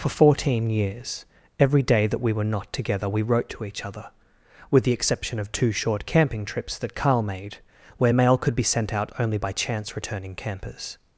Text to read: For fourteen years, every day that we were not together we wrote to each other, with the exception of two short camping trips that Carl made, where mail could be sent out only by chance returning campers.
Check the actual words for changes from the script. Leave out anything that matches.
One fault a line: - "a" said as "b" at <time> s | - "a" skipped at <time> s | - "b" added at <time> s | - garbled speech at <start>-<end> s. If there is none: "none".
none